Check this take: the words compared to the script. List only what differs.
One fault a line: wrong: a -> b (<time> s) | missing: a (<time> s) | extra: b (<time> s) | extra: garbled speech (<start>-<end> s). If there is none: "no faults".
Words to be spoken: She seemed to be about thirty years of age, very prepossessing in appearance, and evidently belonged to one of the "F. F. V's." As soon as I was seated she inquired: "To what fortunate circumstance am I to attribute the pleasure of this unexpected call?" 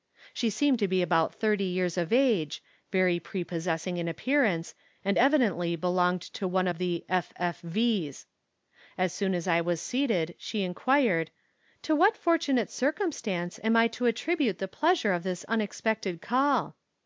no faults